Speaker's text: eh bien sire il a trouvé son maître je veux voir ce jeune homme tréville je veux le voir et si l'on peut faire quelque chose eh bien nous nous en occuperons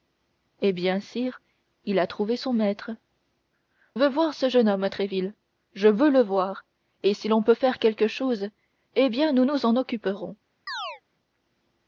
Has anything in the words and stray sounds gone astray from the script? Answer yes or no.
yes